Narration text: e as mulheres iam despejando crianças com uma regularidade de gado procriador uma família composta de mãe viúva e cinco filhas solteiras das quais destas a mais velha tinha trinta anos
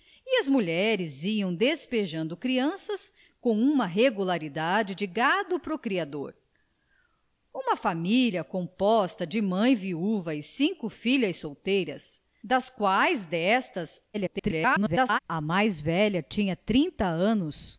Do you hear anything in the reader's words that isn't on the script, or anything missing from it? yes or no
yes